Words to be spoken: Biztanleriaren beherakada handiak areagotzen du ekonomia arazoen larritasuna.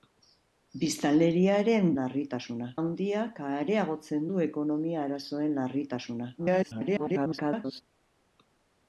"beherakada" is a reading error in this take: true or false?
true